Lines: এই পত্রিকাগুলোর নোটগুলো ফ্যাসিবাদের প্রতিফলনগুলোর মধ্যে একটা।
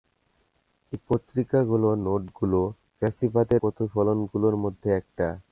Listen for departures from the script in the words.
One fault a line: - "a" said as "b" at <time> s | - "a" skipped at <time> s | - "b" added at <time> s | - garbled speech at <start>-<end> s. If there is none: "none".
none